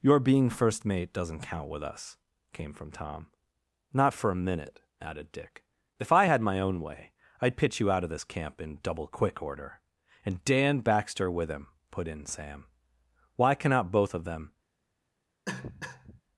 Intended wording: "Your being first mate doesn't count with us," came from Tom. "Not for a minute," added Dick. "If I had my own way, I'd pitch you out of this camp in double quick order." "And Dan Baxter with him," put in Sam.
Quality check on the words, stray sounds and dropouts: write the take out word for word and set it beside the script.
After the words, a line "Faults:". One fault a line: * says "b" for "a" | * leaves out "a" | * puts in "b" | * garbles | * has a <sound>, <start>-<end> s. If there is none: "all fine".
"Your being first mate doesn't count with us," came from Tom. "Not for a minute," added Dick. "If I had my own way, I'd pitch you out of this camp in double quick order." "And Dan Baxter with him," put in Sam. "Why cannot both of them
Faults:
* puts in "Why cannot both of them"
* has a cough, 15.5-16.2 s